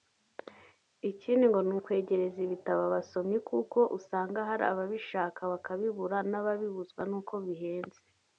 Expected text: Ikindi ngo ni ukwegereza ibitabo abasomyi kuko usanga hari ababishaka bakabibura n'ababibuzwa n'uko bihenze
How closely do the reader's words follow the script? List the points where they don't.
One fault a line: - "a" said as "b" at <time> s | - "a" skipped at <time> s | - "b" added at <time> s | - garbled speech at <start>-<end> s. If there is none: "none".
none